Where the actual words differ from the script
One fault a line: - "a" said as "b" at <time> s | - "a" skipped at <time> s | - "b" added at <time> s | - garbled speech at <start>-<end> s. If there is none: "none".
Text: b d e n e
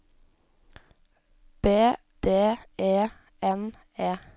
none